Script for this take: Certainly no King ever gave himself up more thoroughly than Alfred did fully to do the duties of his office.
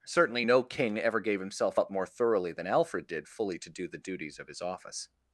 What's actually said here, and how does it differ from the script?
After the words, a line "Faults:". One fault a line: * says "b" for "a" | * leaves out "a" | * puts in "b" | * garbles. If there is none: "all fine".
Certainly no King ever gave himself up more thoroughly than Alfred did fully to do the duties of his office.
Faults:
all fine